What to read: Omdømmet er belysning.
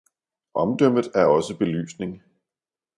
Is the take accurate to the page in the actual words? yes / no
no